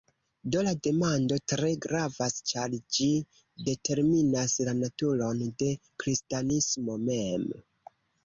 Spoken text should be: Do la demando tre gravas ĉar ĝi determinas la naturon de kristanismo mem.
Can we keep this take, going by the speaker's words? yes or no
yes